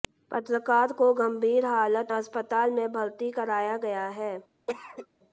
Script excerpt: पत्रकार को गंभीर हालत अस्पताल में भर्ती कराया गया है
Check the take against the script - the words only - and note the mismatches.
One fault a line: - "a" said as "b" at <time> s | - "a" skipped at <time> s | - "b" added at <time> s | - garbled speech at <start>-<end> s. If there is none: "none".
none